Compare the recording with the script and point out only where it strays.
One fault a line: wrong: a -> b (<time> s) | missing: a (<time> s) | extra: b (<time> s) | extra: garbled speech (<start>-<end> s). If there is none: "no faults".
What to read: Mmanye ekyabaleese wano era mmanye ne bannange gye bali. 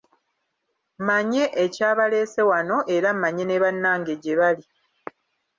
no faults